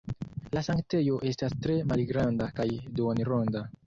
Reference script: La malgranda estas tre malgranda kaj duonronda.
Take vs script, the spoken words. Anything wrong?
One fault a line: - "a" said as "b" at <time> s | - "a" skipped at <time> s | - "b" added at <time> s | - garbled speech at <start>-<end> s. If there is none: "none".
- "malgranda" said as "sanktejo" at 0.7 s